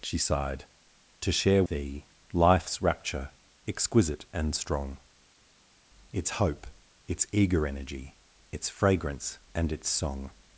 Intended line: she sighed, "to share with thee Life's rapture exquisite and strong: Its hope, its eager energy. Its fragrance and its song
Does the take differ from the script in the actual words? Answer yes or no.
yes